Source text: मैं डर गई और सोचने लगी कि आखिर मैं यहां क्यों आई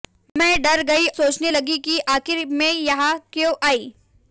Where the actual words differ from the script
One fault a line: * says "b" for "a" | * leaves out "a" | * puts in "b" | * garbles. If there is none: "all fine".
* leaves out "और"